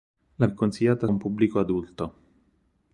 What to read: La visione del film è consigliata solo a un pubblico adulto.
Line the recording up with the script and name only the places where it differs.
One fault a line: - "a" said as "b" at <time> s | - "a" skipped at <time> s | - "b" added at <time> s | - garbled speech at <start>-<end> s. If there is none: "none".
- "visione del film" skipped at 0.5 s
- "solo" skipped at 1.1 s